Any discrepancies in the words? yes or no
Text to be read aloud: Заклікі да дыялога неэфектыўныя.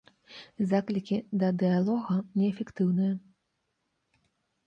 no